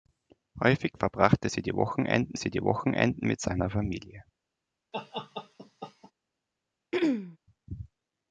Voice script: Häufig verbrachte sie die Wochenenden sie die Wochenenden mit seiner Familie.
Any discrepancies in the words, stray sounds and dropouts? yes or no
yes